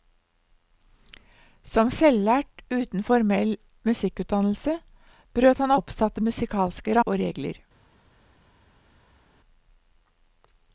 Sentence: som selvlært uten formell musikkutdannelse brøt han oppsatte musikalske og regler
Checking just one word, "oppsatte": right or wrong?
right